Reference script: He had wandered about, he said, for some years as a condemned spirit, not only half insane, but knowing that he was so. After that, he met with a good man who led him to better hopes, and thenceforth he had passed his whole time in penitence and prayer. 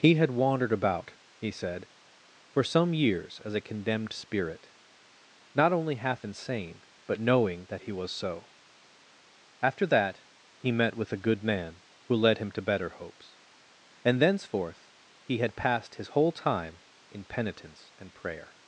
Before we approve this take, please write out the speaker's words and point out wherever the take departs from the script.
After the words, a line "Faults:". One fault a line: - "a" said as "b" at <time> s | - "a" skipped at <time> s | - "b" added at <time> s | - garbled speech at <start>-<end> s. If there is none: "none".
He had wandered about, he said, for some years as a condemned spirit, not only half insane, but knowing that he was so. After that, he met with a good man who led him to better hopes, and thenceforth he had passed his whole time in penitence and prayer.
Faults:
none